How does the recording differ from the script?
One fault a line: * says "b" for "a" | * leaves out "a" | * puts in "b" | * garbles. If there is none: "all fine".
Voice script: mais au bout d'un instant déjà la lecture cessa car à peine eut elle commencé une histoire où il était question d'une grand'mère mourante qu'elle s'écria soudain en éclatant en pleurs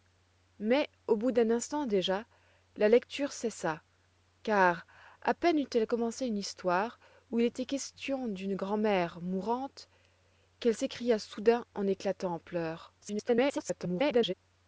* garbles